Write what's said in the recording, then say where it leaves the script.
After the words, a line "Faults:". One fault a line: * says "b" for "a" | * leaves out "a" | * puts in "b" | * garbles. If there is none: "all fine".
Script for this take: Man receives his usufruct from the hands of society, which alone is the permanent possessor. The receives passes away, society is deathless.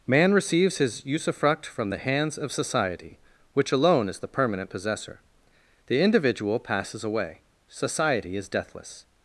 Man receives his usufruct from the hands of society, which alone is the permanent possessor. The individual passes away, society is deathless.
Faults:
* says "individual" for "receives"